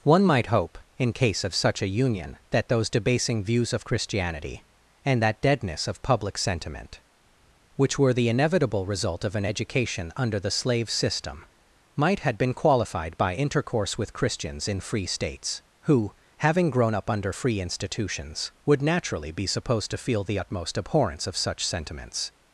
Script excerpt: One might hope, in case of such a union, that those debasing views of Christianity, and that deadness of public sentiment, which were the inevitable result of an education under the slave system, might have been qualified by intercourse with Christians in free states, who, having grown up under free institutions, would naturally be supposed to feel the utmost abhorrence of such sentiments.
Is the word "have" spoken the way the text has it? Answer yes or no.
no